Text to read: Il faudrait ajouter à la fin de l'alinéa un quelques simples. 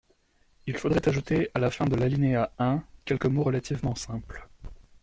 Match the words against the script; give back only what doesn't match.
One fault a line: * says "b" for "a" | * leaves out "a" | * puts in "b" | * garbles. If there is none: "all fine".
* puts in "mots relativement"